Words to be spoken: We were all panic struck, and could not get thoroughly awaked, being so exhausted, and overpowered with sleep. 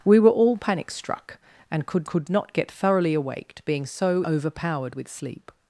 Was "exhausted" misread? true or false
true